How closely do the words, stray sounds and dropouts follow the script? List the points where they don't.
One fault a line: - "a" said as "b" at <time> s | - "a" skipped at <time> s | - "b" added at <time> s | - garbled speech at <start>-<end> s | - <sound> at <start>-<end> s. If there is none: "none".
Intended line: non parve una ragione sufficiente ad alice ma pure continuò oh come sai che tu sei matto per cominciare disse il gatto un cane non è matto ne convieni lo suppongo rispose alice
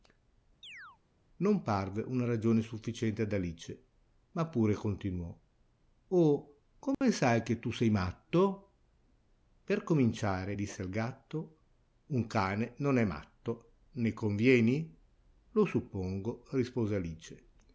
- chirp at 0.6-1.0 s
- dropout at 6.9-7.0 s